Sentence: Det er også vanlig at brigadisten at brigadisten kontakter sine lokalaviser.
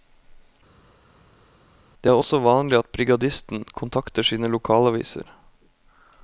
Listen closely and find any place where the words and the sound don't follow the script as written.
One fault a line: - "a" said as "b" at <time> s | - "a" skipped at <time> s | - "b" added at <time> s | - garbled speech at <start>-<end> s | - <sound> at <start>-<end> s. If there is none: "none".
- "at brigadisten" skipped at 3.6 s